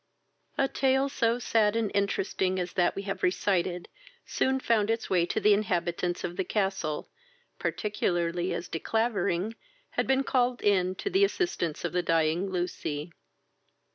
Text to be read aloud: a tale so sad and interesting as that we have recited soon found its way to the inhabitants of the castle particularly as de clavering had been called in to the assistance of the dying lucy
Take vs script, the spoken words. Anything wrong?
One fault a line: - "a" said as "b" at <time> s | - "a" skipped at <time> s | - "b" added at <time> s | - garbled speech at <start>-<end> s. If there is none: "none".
none